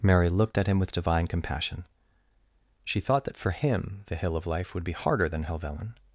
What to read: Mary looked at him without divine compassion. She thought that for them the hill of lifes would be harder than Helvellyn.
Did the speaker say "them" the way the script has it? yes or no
no